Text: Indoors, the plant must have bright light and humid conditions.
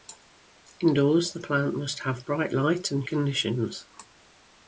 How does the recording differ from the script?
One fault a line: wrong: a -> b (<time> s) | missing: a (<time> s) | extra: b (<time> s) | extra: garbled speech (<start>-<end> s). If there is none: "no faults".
missing: humid (3.0 s)